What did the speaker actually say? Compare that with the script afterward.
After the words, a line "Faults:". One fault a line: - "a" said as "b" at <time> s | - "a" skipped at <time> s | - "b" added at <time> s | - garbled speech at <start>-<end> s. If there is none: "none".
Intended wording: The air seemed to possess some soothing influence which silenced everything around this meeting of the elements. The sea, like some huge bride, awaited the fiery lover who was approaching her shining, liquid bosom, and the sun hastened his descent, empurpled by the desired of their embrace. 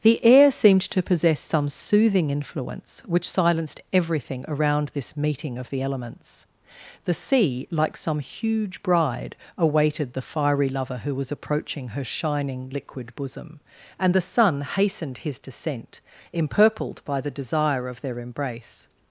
The air seemed to possess some soothing influence which silenced everything around this meeting of the elements. The sea, like some huge bride, awaited the fiery lover who was approaching her shining, liquid bosom, and the sun hastened his descent, empurpled by the desire of their embrace.
Faults:
- "desired" said as "desire" at 17.3 s